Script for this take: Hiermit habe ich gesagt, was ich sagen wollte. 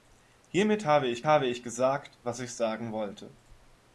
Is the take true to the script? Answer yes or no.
no